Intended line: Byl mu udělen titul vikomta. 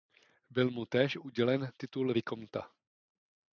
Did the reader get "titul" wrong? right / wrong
right